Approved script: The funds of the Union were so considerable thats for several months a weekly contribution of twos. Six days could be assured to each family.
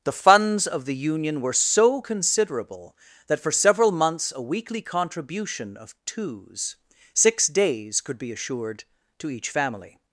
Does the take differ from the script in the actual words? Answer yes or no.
yes